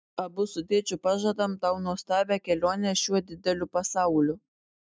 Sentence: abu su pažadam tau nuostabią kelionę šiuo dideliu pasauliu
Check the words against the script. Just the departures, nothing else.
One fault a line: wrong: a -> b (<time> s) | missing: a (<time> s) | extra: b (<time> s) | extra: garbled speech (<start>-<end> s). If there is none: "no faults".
extra: tėčiu (0.7 s)